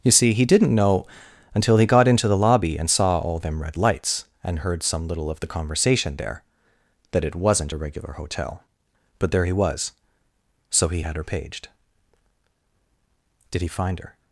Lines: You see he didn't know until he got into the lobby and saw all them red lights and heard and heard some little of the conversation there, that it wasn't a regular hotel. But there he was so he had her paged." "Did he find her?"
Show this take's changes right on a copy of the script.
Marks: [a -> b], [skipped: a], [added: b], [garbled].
You see he didn't know until he got into the lobby and saw all them red lights and heard [skipped: and heard] some little of the conversation there, that it wasn't a regular hotel. But there he was so he had her paged." "Did he find her?"